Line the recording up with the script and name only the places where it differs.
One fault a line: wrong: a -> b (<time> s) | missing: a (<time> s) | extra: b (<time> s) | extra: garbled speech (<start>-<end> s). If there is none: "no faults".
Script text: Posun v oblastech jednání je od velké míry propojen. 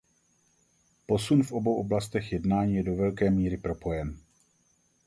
extra: obou (1.5 s)
wrong: od -> do (2.8 s)